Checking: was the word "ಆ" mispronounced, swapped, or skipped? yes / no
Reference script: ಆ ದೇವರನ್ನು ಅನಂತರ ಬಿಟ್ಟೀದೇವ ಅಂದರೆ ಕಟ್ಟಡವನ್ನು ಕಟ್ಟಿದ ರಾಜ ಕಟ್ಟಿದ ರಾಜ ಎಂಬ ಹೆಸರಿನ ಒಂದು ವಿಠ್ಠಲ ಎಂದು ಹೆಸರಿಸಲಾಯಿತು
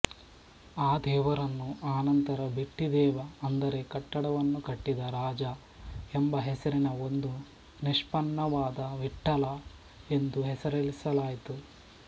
no